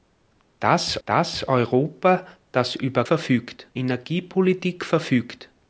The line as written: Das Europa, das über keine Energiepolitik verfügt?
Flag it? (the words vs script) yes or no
yes